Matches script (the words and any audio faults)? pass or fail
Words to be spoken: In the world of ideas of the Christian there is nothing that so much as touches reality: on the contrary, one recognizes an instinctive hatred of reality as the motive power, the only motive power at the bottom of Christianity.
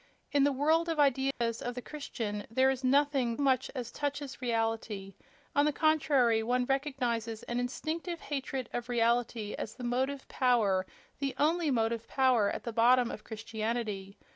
fail